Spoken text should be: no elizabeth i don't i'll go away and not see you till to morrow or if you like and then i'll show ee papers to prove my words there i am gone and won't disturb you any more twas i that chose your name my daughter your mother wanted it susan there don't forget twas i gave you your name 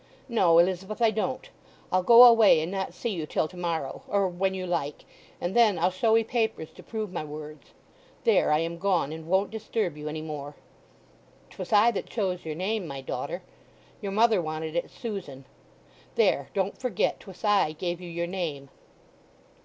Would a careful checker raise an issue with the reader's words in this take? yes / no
yes